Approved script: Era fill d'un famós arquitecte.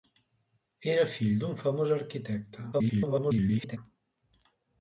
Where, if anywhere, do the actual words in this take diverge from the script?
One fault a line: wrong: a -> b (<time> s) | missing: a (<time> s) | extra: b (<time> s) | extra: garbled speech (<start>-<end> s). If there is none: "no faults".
extra: garbled speech (2.7-3.8 s)